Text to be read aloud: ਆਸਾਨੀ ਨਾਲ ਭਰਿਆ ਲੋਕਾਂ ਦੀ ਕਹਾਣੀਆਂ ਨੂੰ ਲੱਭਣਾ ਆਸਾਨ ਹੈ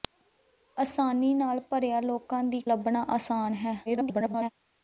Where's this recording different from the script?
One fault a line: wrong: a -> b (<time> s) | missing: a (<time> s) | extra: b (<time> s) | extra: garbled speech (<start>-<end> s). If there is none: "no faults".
missing: ਕਹਾਣੀਆਂ ਨੂੰ (2.6 s)
extra: garbled speech (3.9-4.5 s)